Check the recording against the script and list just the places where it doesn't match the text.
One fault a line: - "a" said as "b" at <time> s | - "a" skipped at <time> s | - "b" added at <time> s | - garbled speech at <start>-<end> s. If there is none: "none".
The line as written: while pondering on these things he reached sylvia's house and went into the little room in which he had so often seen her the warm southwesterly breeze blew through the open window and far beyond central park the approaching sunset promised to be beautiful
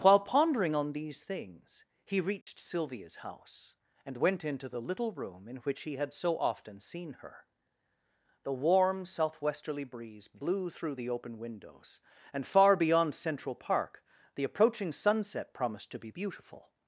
- "window" said as "windows" at 11.4 s